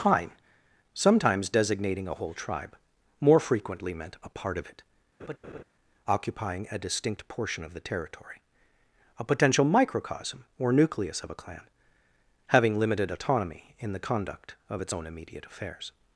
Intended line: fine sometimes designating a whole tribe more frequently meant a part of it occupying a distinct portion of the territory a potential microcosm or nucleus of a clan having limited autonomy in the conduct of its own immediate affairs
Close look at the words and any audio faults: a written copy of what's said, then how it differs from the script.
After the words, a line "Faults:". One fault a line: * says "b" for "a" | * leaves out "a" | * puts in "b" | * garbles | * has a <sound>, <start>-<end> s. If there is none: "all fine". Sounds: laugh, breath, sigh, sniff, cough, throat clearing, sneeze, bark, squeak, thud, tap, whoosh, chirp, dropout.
fine sometimes designating a whole tribe more frequently meant a part of it occupying a distinct portion of the territory a potential microcosm or nucleus of a clan having limited autonomy in the conduct of its own immediate affairs
Faults:
* has a laugh, 5.2-5.6 s